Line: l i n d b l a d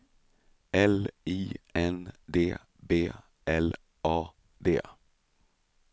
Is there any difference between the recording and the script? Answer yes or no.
no